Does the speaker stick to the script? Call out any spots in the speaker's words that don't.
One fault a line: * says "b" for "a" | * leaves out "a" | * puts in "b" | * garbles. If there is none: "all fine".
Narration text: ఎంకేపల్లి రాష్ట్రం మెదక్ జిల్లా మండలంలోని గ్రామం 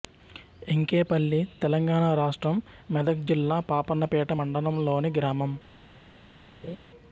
* puts in "తెలంగాణ"
* puts in "పాపన్నపేట"